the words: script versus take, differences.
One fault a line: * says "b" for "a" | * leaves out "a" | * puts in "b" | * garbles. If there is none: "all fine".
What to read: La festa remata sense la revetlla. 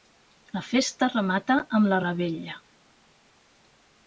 * says "amb" for "sense"